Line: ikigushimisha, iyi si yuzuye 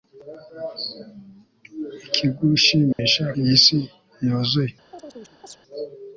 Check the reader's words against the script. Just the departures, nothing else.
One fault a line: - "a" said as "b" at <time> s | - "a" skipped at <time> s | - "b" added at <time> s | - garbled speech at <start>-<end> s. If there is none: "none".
none